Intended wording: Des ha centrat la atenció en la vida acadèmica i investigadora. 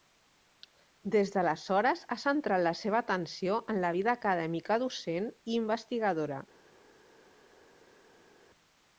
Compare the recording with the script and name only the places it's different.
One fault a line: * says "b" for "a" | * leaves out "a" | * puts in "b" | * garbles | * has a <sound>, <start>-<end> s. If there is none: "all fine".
* puts in "d'aleshores"
* puts in "seva"
* puts in "docent"